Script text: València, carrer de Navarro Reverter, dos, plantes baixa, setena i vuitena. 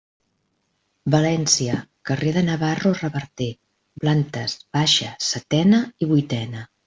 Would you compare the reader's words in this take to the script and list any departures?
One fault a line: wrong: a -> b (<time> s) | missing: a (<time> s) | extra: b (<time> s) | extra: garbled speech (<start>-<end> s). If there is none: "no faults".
missing: dos (3.5 s)